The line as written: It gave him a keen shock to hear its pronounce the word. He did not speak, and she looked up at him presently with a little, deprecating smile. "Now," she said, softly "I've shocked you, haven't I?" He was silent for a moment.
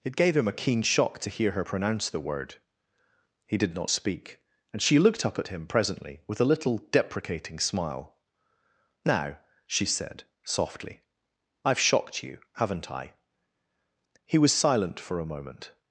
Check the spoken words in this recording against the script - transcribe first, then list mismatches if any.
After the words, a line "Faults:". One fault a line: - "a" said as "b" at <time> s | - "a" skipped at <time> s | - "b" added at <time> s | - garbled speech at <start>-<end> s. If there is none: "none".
It gave him a keen shock to hear her pronounce the word. He did not speak, and she looked up at him presently with a little, deprecating smile. "Now," she said, softly "I've shocked you, haven't I?" He was silent for a moment.
Faults:
- "its" said as "her" at 1.5 s